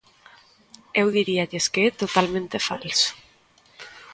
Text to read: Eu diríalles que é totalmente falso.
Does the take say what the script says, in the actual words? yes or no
yes